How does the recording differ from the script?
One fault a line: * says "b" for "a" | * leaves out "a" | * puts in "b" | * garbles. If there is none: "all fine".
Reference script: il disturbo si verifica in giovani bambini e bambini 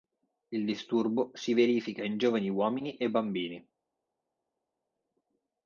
* says "uomini" for "bambini"